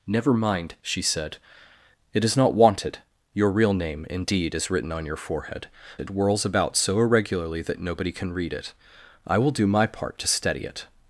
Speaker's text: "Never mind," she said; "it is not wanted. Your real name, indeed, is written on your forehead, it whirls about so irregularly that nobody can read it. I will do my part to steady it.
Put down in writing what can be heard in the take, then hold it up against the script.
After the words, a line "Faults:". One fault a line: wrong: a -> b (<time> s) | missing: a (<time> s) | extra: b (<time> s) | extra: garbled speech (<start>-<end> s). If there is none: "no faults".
"Never mind," she said; "it is not wanted. Your real name, indeed, is written on your forehead, it whirls about so irregularly that nobody can read it. I will do my part to steady it.
Faults:
no faults